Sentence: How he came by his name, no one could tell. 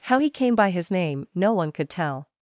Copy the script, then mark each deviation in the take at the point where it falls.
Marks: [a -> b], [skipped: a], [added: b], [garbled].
How he came by his name, no one could tell.